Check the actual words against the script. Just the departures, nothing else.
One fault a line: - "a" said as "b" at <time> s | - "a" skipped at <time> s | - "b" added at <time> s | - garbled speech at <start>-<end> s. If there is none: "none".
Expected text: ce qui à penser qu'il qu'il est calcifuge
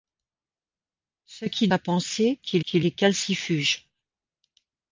none